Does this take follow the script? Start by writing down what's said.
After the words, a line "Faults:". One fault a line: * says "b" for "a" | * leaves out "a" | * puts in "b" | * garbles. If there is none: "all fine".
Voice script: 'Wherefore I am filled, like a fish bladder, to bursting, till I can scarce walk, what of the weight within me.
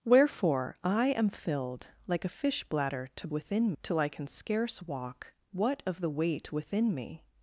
'Wherefore I am filled, like a fish bladder, to within, till I can scarce walk, what of the weight within me.
Faults:
* says "within" for "bursting"